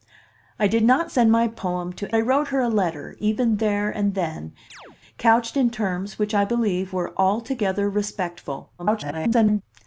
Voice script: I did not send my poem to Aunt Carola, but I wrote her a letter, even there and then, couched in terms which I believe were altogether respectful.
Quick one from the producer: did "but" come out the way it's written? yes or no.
no